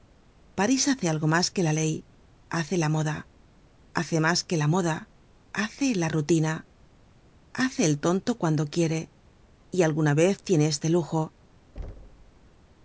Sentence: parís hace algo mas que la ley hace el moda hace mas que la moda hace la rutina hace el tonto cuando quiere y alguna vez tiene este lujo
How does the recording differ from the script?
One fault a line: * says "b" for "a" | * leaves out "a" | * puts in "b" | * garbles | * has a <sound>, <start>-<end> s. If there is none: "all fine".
* says "la" for "el"
* has a thud, 11.8-12.5 s